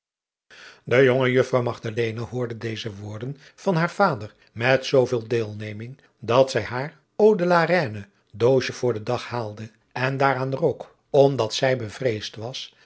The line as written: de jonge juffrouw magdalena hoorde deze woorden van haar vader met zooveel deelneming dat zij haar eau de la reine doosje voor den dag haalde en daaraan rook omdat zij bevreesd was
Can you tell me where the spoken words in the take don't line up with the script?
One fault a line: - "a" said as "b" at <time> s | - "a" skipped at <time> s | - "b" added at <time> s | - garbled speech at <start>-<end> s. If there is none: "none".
none